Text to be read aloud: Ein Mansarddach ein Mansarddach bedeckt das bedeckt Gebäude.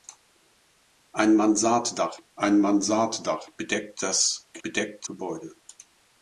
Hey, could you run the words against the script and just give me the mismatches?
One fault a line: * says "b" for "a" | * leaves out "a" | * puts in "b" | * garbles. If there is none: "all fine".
all fine